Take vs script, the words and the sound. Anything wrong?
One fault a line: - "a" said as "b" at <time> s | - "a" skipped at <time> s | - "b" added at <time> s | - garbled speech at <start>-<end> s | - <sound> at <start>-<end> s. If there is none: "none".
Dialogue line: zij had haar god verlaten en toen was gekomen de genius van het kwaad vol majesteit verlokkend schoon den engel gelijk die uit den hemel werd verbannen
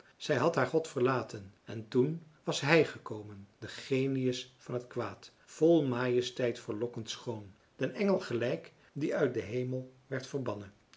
- "hij" added at 2.6 s